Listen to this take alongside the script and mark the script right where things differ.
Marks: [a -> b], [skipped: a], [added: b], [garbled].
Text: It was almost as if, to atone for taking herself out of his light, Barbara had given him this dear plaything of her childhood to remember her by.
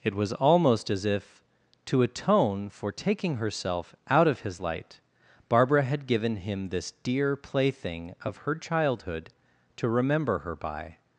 It was almost as if, to atone for taking herself out of his light, Barbara had given him this dear plaything of her childhood to remember her by.